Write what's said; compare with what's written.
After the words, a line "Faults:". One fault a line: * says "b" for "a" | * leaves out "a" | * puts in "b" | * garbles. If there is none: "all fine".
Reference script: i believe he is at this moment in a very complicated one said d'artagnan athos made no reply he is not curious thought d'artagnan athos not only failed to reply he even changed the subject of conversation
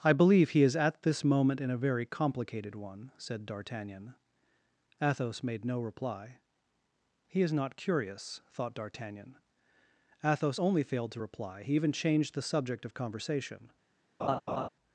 i believe he is at this moment in a very complicated one said d'artagnan athos made no reply he is not curious thought d'artagnan athos only failed to reply he even changed the subject of conversation
Faults:
* leaves out "not"